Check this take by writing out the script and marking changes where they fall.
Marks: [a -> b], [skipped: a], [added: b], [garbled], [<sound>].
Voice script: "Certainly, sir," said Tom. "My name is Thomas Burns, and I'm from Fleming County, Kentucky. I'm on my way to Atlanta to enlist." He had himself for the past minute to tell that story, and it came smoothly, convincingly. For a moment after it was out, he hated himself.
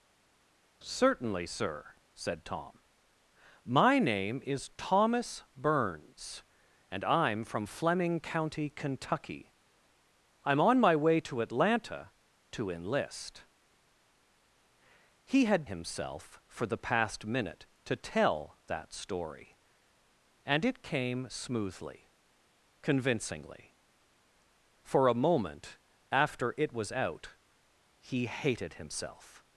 "Certainly, sir," said Tom. "My name is Thomas Burns, and I'm from Fleming County, Kentucky. I'm on my way to Atlanta to enlist." He had himself for the past minute to tell that story, and it came smoothly, convincingly. For a moment after it was out, he hated himself.